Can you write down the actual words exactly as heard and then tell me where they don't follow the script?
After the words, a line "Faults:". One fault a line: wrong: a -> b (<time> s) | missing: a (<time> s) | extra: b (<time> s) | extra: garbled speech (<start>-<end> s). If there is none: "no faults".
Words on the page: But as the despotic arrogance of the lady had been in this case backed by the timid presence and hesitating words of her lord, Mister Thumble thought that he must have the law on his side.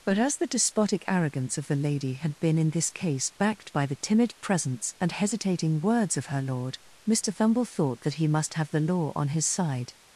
But as the despotic arrogance of the lady had been in this case backed by the timid presence and hesitating words of her lord, Mister Thumble thought that he must have the law on his side.
Faults:
no faults